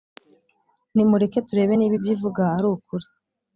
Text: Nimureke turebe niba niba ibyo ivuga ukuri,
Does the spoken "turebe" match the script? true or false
true